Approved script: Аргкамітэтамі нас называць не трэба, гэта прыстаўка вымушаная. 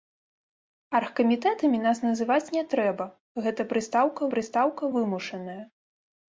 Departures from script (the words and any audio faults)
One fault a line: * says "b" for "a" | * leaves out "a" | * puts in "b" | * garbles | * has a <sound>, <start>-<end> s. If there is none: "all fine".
* puts in "прыстаўка"